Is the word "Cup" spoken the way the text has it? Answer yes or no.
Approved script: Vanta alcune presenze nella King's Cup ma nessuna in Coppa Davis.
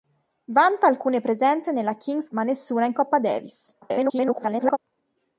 no